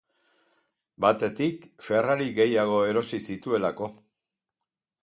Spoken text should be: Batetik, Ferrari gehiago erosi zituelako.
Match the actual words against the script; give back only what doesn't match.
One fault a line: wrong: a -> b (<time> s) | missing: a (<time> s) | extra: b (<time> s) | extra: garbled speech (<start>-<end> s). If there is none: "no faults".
no faults